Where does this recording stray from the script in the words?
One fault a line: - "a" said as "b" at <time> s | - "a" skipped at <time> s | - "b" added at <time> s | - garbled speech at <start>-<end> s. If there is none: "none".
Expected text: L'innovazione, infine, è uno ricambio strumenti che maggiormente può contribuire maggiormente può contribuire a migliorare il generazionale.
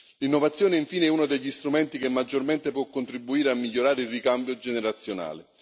- "ricambio" said as "degli" at 1.2 s
- "maggiormente può contribuire" skipped at 3.5 s
- "ricambio" added at 4.1 s